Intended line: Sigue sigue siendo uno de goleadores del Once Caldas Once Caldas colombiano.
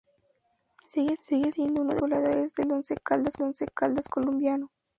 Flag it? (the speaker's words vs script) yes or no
no